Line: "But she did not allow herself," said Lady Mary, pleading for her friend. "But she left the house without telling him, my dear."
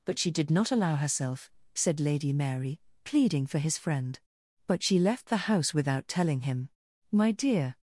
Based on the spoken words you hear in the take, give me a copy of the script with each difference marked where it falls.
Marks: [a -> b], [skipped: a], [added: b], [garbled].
"But she did not allow herself," said Lady Mary, pleading for [her -> his] friend. "But she left the house without telling him, my dear."